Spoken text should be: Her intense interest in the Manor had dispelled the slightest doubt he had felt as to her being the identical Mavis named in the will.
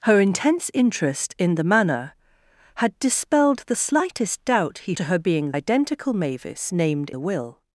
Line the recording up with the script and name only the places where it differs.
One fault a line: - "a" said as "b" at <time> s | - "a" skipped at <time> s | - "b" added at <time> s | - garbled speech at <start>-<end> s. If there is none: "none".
- "had felt as" skipped at 5.0 s
- "the" skipped at 5.5 s
- "in" skipped at 7.1 s